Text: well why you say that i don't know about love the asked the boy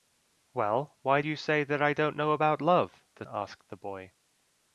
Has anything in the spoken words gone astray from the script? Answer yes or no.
no